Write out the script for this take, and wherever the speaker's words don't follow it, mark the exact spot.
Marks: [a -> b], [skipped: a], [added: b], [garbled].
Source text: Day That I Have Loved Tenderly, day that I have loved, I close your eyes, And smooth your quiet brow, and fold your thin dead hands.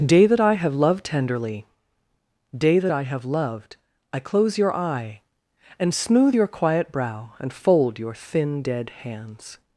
Day That I Have Loved Tenderly, day that I have loved, I close your [eyes, -> eye] And smooth your quiet brow, and fold your thin dead hands.